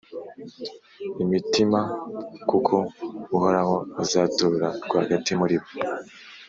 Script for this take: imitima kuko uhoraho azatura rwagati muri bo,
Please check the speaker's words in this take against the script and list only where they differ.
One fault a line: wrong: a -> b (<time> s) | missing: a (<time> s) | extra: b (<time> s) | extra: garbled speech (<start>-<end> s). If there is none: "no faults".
no faults